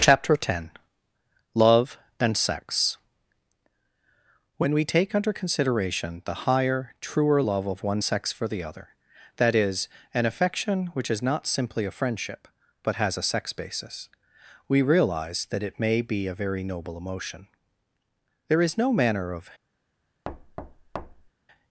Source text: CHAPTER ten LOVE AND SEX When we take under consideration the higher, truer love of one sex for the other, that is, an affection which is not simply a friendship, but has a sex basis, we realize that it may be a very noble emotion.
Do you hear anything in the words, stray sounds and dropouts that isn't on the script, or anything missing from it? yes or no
yes